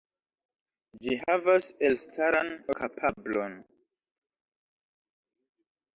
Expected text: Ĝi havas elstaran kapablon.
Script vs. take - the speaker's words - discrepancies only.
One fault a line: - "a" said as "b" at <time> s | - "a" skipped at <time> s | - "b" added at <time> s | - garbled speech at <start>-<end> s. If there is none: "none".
none